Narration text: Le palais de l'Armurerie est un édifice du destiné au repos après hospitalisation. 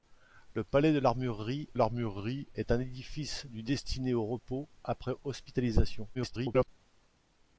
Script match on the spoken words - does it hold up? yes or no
no